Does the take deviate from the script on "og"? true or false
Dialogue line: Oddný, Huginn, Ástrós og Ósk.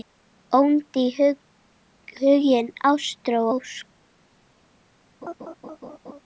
true